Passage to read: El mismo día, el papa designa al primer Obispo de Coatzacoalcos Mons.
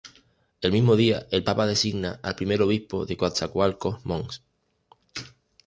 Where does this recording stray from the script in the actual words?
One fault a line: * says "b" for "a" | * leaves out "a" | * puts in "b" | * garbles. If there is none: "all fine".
all fine